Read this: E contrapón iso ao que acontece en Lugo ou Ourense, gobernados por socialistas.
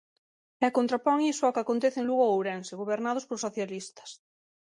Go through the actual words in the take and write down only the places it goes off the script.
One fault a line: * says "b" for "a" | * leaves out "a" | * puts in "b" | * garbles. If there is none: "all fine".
all fine